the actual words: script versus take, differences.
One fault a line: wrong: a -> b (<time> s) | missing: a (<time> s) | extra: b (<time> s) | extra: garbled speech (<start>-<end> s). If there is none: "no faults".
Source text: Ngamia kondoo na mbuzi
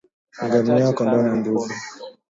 no faults